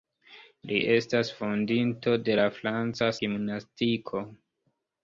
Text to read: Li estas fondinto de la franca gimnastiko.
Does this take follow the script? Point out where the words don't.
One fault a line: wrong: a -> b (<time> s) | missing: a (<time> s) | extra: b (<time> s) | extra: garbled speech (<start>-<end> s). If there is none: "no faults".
no faults